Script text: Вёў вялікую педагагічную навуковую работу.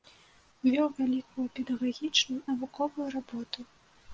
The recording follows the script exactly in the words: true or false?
true